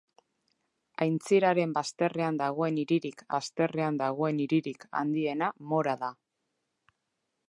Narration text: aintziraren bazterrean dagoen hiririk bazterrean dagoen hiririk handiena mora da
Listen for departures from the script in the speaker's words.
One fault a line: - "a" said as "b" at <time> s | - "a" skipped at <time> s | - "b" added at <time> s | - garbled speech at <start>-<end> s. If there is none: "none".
none